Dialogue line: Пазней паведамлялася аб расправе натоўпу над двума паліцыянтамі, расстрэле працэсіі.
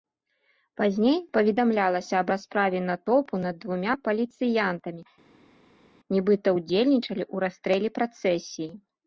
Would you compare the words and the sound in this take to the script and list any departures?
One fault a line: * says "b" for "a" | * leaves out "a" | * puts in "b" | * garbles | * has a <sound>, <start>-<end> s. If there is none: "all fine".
* puts in "нібыта ўдзельнічалі ў"